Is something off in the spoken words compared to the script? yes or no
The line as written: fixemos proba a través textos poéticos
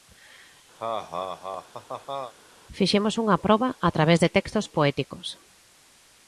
yes